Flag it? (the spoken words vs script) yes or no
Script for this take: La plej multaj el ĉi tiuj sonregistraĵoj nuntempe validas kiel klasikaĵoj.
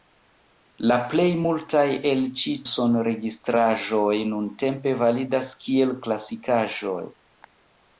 yes